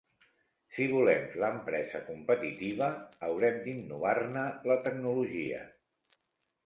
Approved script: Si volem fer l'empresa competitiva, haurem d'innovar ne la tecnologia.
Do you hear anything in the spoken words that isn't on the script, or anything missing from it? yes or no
yes